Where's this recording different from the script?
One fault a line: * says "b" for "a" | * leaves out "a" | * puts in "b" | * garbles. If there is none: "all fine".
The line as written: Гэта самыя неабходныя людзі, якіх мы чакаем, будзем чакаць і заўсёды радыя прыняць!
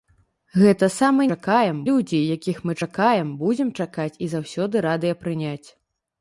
* says "чакаем" for "неабходныя"